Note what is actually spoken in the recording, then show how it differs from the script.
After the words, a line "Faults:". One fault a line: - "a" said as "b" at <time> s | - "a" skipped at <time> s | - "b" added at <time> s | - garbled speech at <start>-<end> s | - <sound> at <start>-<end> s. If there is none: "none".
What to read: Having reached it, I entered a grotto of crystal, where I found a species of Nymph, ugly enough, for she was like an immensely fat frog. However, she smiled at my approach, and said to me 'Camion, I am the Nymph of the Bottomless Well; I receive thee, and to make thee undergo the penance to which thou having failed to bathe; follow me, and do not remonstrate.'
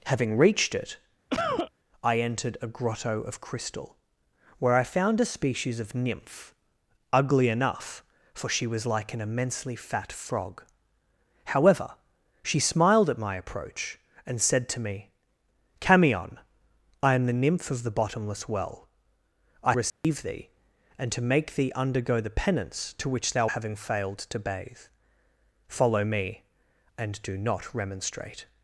Having reached it, I entered a grotto of crystal, where I found a species of Nymph, ugly enough, for she was like an immensely fat frog. However, she smiled at my approach, and said to me 'Camion, I am the Nymph of the Bottomless Well; I receive thee, and to make thee undergo the penance to which thou having failed to bathe; follow me, and do not remonstrate.'
Faults:
- cough at 1.3-1.7 s
- dropout at 19.9-20.0 s